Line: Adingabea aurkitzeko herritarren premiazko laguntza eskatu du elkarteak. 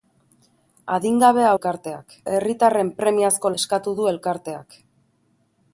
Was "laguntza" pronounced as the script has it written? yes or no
no